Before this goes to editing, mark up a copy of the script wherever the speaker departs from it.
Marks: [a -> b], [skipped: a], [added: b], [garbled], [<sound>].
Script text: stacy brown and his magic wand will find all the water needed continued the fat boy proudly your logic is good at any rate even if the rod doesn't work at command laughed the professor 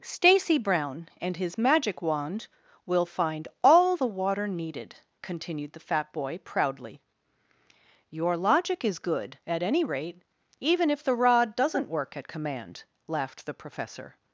stacy brown and his magic wand will find all the water needed continued the fat boy proudly your logic is good at any rate even if the rod doesn't work at command laughed the professor